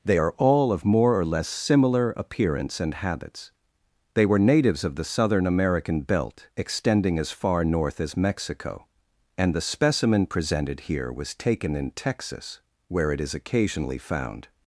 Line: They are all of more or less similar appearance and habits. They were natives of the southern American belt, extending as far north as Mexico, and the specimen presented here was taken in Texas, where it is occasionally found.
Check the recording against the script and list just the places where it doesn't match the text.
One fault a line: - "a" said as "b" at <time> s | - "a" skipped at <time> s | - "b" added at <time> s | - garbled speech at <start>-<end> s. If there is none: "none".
none